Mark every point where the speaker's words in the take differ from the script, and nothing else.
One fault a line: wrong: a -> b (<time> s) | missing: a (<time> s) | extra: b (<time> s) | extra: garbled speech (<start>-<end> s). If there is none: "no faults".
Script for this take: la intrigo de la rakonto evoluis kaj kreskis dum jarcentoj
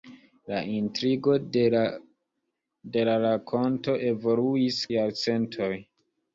missing: kaj kreskis dum (4.8 s)